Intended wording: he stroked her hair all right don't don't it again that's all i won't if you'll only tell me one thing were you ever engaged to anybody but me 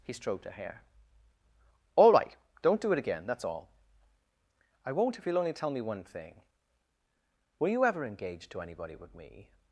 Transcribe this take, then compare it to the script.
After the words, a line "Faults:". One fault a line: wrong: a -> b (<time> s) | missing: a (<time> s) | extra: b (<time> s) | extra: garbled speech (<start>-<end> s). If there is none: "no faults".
he stroked her hair all right don't do it again that's all i won't if you'll only tell me one thing were you ever engaged to anybody but me
Faults:
wrong: don't -> do (2.8 s)